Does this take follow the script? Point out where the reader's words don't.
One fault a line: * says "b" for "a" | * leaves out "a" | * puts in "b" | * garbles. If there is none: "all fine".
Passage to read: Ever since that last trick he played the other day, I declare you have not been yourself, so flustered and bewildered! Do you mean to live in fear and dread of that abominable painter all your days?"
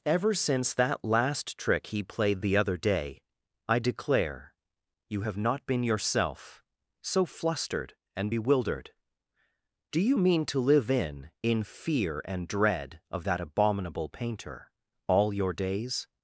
* puts in "in"